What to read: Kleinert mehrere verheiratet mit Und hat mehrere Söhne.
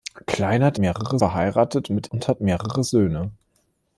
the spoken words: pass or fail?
pass